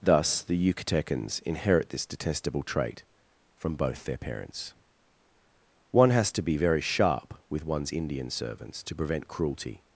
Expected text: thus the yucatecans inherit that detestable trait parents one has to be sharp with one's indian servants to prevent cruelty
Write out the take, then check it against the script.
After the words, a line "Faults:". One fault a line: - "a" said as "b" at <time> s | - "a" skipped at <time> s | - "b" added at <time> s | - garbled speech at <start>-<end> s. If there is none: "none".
thus the yucatecans inherit this detestable trait from both their parents one has to be very sharp with one's indian servants to prevent cruelty
Faults:
- "that" said as "this" at 1.9 s
- "from both their" added at 3.5 s
- "very" added at 6.6 s